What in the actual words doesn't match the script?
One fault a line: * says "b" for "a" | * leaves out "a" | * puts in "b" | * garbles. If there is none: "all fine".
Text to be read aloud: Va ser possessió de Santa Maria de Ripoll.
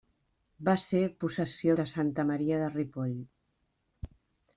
all fine